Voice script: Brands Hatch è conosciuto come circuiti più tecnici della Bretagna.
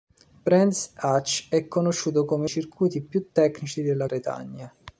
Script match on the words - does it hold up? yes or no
yes